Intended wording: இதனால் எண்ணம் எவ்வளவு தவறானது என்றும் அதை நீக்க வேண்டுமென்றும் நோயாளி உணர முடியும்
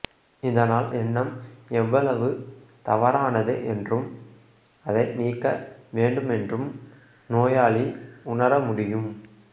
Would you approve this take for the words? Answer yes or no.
yes